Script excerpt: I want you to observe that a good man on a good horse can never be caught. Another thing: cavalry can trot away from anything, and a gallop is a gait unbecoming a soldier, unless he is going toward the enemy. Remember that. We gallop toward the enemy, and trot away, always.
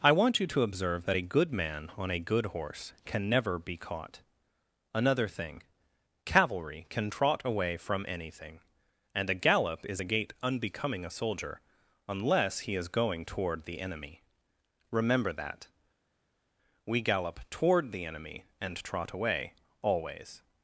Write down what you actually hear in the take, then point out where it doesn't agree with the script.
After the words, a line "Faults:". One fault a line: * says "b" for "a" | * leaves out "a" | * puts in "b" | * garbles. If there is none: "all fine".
I want you to observe that a good man on a good horse can never be caught. Another thing: cavalry can trot away from anything, and a gallop is a gait unbecoming a soldier, unless he is going toward the enemy. Remember that. We gallop toward the enemy, and trot away, always.
Faults:
all fine